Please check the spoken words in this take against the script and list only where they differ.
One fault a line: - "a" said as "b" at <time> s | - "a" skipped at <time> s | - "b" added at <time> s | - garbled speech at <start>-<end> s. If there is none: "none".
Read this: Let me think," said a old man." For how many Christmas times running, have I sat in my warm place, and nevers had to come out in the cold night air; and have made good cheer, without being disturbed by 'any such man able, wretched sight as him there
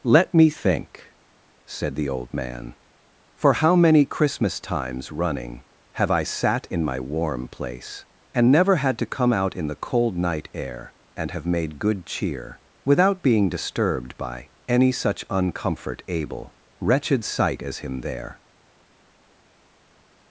- "a" said as "the" at 1.9 s
- "nevers" said as "never" at 8.5 s
- "man" said as "uncomfort" at 15.3 s